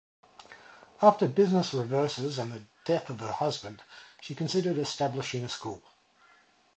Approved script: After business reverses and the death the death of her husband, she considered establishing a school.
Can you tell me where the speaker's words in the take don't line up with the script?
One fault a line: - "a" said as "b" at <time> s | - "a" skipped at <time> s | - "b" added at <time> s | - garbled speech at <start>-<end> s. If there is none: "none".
- "the death" skipped at 3.1 s